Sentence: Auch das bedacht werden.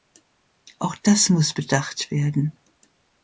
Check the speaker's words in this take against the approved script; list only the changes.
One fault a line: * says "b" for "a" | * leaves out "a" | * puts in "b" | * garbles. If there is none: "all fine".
* puts in "muss"